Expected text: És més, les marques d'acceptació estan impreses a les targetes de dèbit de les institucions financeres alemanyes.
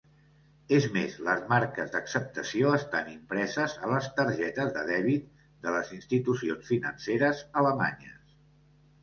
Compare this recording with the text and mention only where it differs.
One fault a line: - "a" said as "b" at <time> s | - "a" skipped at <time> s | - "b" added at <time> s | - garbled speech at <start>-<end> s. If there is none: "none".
none